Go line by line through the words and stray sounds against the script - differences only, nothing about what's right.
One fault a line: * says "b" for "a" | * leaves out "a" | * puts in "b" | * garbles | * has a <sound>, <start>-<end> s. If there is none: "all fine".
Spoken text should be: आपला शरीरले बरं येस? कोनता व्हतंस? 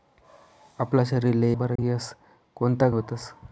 * has a dropout, 1.8-1.8 s